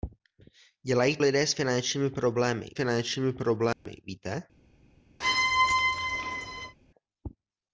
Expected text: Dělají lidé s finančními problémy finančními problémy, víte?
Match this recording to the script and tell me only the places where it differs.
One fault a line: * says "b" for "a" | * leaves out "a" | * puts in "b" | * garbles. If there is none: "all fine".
all fine